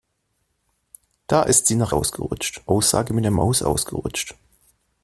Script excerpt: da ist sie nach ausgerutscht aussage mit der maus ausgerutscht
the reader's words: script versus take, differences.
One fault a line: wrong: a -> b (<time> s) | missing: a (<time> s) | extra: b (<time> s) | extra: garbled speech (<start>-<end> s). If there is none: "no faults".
no faults